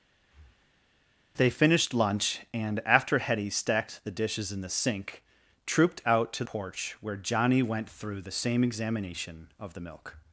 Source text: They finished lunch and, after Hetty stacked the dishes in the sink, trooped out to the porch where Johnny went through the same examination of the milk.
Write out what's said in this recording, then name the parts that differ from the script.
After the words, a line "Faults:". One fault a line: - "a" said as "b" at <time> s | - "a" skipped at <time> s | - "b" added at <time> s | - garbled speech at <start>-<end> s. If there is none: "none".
They finished lunch and, after Hetty stacked the dishes in the sink, trooped out to porch where Johnny went through the same examination of the milk.
Faults:
- "the" skipped at 6.4 s